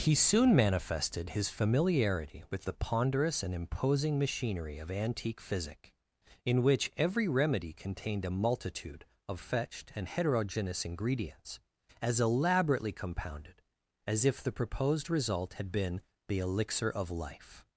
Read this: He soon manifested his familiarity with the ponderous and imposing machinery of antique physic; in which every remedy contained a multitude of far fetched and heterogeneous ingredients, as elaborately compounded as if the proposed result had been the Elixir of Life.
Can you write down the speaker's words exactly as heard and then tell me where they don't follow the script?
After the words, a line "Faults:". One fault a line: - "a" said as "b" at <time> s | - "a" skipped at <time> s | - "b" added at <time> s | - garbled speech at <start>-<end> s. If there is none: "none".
He soon manifested his familiarity with the ponderous and imposing machinery of antique physic; in which every remedy contained a multitude of fetched and heterogeneous ingredients, as elaborately compounded as if the proposed result had been the Elixir of Life.
Faults:
- "far" skipped at 9.4 s